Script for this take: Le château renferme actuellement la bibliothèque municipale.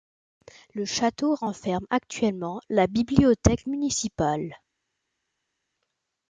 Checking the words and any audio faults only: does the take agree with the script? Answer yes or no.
yes